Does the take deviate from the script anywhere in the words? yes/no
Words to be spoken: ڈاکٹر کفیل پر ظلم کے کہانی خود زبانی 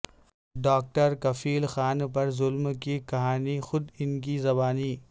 yes